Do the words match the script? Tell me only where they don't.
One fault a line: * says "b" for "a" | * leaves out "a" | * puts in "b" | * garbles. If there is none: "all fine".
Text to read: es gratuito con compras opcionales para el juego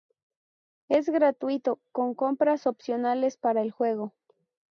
all fine